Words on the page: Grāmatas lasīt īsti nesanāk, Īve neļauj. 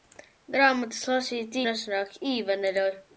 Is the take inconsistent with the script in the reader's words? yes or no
yes